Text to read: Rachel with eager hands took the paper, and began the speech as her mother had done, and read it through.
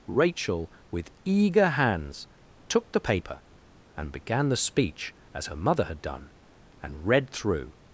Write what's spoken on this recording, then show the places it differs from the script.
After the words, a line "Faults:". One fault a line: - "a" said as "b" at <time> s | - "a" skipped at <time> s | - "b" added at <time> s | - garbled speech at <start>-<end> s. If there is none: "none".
Rachel with eager hands took the paper, and began the speech as her mother had done, and read through.
Faults:
- "it" skipped at 7.3 s